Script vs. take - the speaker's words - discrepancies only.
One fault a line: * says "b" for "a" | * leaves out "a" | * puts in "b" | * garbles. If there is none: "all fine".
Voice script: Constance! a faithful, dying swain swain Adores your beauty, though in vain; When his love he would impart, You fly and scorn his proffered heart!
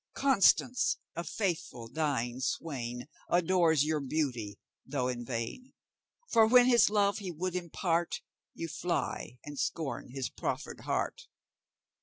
* leaves out "swain"
* puts in "For"